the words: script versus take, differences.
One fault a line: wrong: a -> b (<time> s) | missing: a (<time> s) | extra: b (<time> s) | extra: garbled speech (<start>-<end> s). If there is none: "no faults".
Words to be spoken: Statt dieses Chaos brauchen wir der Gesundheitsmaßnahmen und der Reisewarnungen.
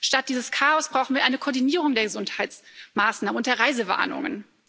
extra: eine Koordinierung (1.2 s)